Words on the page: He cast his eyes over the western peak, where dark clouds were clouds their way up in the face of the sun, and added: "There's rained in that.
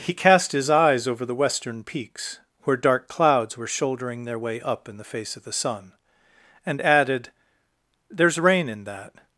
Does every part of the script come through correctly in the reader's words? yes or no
no